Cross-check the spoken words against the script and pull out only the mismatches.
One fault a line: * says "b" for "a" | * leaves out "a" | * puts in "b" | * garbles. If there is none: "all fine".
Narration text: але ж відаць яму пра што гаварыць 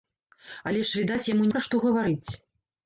all fine